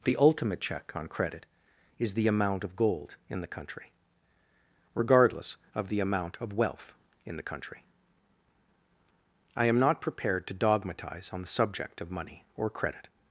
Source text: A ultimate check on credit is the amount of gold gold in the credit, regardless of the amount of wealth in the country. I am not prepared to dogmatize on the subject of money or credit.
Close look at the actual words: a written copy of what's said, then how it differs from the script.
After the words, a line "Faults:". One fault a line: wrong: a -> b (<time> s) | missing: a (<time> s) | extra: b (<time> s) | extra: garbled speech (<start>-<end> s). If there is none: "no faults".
The ultimate check on credit is the amount of gold in the country, regardless of the amount of wealth in the country. I am not prepared to dogmatize on the subject of money or credit.
Faults:
wrong: A -> The (0.0 s)
missing: gold (3.2 s)
wrong: credit -> country (3.5 s)